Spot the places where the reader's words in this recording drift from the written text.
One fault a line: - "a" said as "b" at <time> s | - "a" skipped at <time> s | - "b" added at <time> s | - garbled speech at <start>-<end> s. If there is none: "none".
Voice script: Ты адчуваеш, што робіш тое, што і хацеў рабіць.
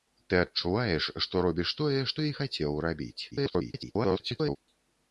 - garbled speech at 3.3-4.6 s